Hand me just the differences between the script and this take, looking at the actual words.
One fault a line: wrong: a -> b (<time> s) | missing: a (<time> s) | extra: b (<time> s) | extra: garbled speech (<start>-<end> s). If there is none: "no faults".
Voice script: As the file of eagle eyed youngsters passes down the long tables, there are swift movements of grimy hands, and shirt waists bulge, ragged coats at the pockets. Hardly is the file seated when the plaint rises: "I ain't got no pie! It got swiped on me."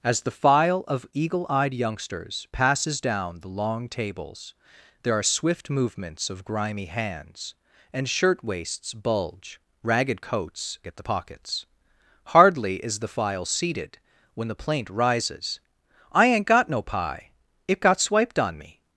no faults